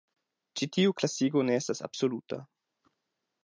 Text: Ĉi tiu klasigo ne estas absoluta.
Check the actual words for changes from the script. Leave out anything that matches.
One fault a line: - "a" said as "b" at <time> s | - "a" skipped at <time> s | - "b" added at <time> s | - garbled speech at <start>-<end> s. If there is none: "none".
none